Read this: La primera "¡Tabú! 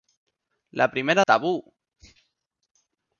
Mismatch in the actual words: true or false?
false